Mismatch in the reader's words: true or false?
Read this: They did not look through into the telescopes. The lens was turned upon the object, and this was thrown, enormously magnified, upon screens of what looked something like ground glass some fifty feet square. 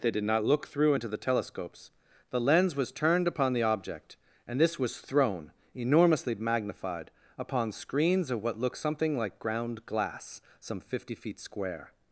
false